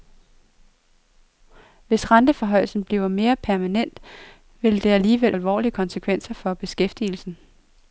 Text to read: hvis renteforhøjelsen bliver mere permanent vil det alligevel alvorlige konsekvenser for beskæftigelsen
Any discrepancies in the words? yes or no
no